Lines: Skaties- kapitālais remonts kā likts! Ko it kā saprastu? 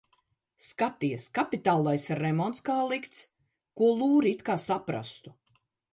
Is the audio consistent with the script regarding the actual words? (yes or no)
no